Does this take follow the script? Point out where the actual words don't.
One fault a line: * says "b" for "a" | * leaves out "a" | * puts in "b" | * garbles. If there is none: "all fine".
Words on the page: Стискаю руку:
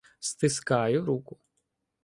all fine